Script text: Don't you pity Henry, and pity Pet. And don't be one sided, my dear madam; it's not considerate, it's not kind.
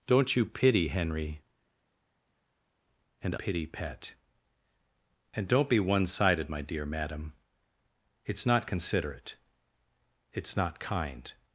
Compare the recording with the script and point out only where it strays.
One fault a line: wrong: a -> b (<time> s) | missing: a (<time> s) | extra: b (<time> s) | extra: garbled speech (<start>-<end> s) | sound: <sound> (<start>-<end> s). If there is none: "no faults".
no faults